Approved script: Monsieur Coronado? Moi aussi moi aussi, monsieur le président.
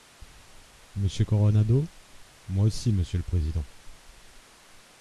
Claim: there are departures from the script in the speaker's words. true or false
true